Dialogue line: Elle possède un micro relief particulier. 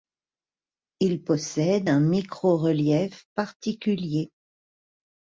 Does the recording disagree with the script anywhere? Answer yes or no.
yes